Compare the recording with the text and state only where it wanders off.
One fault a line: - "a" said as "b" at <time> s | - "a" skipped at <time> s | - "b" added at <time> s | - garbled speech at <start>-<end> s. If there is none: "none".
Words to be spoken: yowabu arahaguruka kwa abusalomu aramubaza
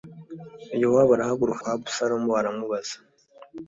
none